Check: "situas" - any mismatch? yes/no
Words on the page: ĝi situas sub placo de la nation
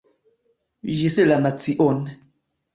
yes